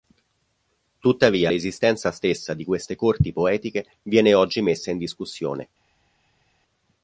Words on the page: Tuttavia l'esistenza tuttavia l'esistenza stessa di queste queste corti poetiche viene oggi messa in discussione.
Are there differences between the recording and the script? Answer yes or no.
yes